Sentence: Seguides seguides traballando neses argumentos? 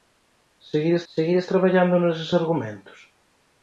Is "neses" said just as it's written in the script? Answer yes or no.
yes